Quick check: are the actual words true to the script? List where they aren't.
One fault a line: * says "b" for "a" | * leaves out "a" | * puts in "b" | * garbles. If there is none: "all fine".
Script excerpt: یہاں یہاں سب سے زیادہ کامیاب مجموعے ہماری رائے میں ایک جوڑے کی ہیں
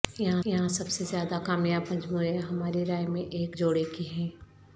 all fine